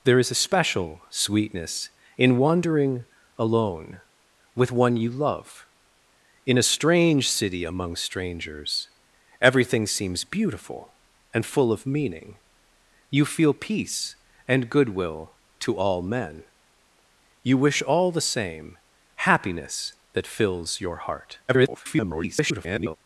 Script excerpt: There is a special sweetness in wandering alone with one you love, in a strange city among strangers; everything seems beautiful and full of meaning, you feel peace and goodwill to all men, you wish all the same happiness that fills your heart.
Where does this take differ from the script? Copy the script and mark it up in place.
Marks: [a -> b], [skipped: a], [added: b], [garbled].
There is a special sweetness in wandering alone with one you love, in a strange city among strangers; everything seems beautiful and full of meaning, you feel peace and goodwill to all men, you wish all the same happiness that fills your heart. [garbled]